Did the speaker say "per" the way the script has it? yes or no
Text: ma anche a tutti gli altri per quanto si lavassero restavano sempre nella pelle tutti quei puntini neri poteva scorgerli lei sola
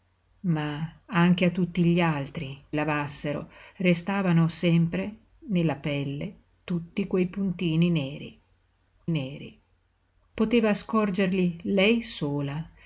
no